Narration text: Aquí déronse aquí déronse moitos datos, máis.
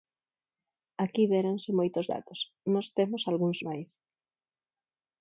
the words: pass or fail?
fail